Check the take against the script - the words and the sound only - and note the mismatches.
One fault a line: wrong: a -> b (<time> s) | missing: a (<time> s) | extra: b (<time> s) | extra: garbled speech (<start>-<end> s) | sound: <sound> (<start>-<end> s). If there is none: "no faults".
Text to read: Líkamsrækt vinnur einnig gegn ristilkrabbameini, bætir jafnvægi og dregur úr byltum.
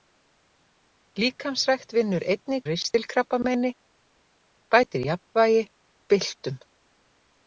missing: gegn (2.6 s)
missing: og dregur úr (5.6 s)